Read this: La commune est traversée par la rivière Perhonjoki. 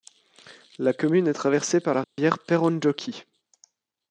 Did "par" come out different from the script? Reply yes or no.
no